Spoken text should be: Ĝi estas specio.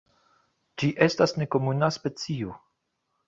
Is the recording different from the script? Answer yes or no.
yes